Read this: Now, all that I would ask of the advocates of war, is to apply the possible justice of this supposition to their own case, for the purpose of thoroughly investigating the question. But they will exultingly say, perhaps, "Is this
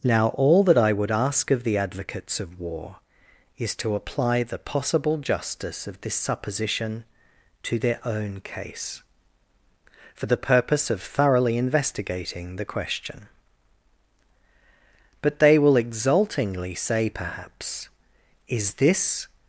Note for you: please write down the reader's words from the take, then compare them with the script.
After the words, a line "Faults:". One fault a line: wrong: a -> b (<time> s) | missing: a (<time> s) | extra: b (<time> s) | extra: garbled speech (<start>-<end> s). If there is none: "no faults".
Now, all that I would ask of the advocates of war, is to apply the possible justice of this supposition to their own case, for the purpose of thoroughly investigating the question. But they will exultingly say, perhaps, "Is this
Faults:
no faults